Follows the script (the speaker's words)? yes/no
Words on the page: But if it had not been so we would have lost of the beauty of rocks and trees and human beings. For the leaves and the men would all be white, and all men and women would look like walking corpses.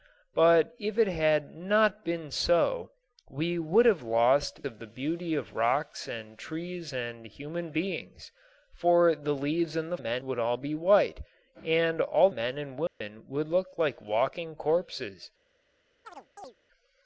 yes